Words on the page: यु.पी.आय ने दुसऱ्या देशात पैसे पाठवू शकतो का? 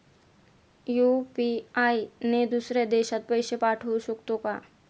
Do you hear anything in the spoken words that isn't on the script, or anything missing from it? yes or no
no